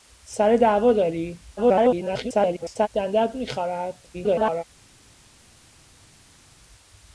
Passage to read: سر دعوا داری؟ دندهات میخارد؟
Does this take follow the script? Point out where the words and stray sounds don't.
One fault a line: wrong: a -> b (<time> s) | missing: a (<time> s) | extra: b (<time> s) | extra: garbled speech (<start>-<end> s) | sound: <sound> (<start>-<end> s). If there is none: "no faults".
extra: garbled speech (1.6-2.9 s)
extra: garbled speech (4.1-4.6 s)